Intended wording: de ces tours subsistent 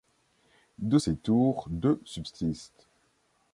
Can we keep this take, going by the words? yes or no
no